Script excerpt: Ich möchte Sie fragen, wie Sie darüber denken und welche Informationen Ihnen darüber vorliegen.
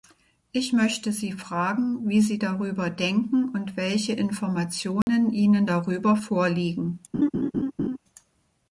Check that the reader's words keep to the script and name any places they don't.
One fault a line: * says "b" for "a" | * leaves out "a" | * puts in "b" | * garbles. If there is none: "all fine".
all fine